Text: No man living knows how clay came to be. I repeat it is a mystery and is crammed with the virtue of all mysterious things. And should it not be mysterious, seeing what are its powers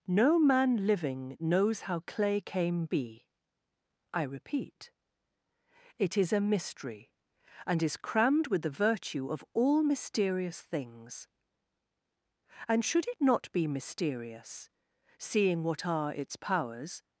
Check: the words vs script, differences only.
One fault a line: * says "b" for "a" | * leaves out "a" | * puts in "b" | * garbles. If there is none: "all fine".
* leaves out "to"